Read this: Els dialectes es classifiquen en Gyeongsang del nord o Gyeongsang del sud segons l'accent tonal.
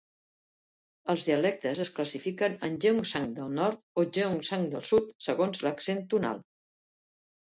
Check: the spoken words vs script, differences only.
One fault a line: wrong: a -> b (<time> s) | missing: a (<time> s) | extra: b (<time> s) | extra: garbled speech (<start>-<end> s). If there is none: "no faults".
no faults